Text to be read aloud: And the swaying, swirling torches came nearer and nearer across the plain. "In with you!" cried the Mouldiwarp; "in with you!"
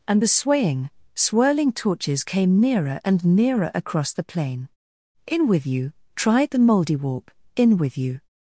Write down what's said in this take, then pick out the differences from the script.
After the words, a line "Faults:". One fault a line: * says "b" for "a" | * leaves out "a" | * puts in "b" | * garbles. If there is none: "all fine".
And the swaying, swirling torches came nearer and nearer across the plain. "In with you!" tried the Mouldiwarp; "in with you!"
Faults:
* says "tried" for "cried"